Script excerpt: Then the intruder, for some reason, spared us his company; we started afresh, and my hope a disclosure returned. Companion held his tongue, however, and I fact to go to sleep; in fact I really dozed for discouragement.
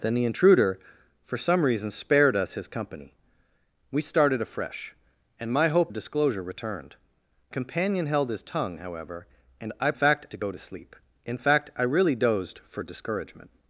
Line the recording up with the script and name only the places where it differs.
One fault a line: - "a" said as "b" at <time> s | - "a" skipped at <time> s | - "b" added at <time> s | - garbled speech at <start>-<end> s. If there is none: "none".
none